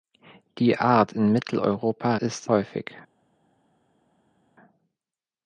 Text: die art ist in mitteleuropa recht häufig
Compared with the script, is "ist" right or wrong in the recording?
wrong